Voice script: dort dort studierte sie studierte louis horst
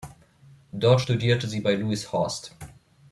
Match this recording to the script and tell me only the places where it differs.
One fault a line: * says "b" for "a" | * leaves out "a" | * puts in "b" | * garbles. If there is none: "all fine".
* leaves out "dort"
* says "bei" for "studierte"